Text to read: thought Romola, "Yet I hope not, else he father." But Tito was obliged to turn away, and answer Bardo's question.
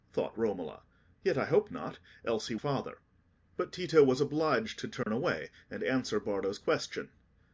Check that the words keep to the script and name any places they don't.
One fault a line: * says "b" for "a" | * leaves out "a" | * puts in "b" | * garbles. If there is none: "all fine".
all fine